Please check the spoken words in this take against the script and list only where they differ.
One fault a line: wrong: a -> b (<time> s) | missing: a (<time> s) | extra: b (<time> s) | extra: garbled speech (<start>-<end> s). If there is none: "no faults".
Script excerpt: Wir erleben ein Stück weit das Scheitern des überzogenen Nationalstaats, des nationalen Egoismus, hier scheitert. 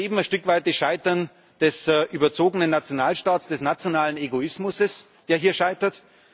extra: der (5.3 s)